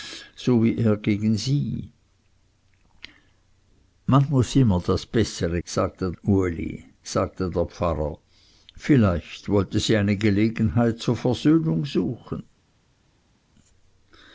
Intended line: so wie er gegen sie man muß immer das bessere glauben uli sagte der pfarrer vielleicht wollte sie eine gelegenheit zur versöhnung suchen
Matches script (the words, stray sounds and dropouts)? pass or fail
fail